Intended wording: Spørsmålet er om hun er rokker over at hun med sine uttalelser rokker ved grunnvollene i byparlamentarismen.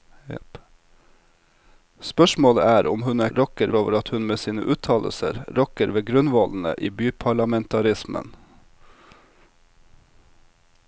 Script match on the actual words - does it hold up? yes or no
yes